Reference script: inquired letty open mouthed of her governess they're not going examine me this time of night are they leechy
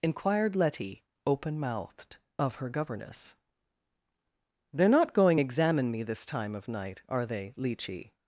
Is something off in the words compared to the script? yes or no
no